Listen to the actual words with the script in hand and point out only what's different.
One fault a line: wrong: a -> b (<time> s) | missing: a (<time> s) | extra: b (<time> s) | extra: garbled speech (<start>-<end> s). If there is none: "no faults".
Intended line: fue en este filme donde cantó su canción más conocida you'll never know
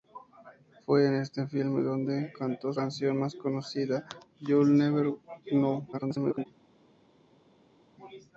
missing: su (2.7 s)
extra: garbled speech (5.9-6.5 s)